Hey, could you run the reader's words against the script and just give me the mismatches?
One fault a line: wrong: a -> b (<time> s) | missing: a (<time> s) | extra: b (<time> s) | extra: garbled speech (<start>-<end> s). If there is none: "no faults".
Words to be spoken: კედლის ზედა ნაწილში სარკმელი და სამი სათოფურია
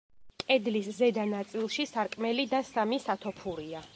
no faults